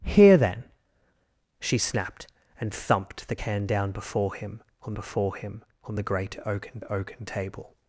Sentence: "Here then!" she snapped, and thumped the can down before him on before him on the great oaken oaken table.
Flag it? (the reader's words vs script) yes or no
no